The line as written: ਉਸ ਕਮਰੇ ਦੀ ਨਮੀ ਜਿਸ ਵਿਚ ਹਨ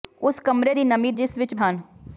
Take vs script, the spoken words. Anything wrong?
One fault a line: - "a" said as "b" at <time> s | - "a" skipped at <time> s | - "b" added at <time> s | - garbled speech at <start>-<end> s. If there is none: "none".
none